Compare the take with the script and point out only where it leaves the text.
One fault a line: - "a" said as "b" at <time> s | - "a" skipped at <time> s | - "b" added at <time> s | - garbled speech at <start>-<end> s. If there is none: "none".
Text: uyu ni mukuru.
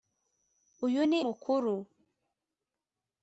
none